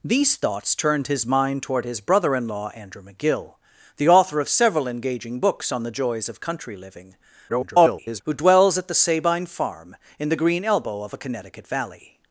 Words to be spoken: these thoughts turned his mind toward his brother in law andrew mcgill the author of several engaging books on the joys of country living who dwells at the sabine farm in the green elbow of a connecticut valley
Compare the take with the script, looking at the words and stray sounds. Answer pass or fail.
fail